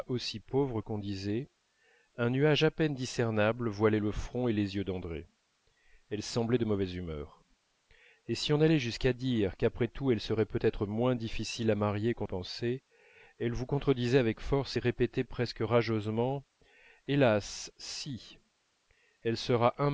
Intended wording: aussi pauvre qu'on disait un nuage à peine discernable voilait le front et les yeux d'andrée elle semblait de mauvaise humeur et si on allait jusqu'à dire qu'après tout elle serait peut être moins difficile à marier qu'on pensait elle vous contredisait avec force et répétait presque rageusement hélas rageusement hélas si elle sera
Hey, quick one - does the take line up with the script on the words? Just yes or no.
no